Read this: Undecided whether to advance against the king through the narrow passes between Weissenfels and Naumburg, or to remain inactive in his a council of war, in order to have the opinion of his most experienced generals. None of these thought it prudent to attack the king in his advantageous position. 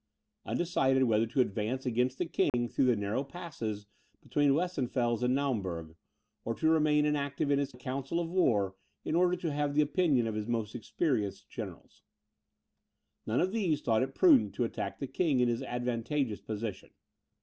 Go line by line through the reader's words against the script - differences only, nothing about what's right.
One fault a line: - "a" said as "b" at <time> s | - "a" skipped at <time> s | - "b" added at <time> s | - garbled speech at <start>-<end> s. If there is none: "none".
none